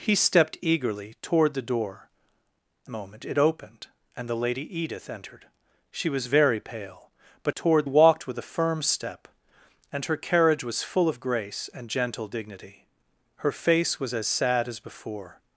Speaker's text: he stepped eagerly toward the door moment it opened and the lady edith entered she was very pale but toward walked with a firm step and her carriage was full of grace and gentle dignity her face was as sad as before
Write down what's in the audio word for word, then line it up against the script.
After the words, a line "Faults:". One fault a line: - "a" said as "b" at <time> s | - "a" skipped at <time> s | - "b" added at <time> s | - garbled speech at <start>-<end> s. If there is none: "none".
he stepped eagerly toward the door moment it opened and the lady edith entered she was very pale but toward walked with a firm step and her carriage was full of grace and gentle dignity her face was as sad as before
Faults:
none